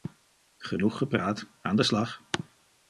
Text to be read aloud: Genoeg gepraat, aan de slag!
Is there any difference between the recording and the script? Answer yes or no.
no